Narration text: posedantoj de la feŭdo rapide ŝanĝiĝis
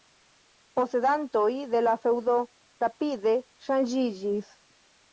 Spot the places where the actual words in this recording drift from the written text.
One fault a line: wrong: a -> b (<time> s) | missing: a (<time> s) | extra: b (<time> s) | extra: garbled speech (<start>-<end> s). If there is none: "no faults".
no faults